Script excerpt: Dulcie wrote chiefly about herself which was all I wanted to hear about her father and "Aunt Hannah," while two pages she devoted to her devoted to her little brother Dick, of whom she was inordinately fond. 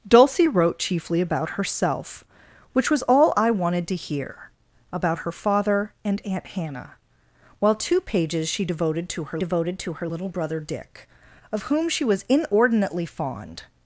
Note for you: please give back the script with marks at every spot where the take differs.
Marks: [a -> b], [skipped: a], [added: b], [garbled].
Dulcie wrote chiefly about herself which was all I wanted to hear about her father and "Aunt Hannah," while two pages she devoted to her devoted to her little brother Dick, of whom she was inordinately fond.